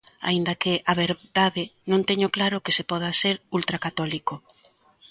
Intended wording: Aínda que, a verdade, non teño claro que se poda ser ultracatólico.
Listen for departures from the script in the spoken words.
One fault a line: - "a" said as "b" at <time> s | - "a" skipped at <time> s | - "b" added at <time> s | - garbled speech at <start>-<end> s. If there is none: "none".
none